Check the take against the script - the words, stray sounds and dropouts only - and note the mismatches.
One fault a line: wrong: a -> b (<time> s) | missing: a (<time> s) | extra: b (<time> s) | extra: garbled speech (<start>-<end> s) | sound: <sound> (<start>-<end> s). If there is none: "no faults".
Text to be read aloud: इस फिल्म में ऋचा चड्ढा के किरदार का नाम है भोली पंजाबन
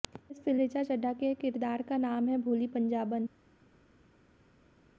missing: में (0.6 s)